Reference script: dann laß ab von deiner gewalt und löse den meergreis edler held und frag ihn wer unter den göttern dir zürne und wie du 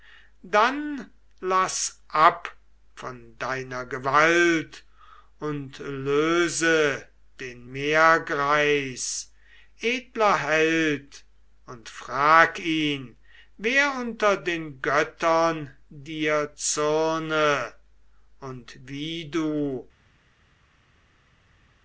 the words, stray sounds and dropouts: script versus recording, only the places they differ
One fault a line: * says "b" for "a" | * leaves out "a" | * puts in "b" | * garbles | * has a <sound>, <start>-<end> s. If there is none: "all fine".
all fine